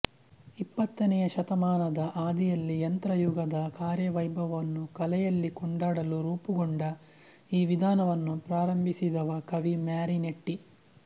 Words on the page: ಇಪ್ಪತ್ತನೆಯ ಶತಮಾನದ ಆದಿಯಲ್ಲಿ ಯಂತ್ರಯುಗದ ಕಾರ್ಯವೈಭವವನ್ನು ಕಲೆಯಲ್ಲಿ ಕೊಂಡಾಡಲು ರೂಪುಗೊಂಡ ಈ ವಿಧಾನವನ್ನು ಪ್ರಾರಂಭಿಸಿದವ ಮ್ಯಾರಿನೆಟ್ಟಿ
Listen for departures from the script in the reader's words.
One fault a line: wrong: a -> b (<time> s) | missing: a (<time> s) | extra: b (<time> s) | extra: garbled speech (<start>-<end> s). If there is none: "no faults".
extra: ಕವಿ (9.5 s)